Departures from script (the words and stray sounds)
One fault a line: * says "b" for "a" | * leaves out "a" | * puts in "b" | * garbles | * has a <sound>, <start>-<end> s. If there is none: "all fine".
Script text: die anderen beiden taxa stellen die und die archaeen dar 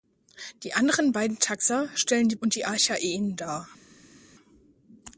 all fine